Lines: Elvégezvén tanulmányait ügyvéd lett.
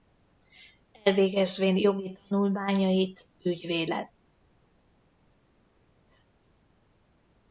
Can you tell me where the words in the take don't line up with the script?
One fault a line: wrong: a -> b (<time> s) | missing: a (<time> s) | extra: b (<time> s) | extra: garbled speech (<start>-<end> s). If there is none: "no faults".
extra: jogi (1.8 s)